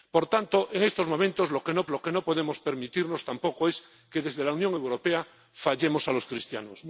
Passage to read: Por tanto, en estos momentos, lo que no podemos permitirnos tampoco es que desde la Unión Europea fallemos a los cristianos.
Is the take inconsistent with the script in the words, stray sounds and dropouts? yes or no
yes